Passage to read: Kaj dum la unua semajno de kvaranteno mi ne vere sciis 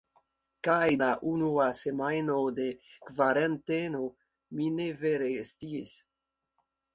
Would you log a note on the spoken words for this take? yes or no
yes